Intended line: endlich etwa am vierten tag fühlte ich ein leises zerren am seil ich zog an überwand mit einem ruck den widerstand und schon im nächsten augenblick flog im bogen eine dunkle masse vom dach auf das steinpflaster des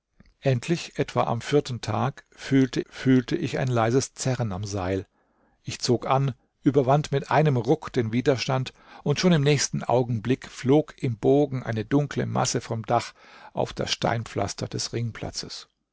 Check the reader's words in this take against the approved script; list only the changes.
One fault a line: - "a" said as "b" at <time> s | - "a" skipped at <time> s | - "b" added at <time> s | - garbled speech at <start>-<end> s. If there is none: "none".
- "fühlte" added at 2.8 s